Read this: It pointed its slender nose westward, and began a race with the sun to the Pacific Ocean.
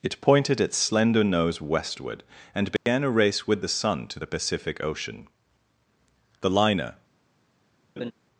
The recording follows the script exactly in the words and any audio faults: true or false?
false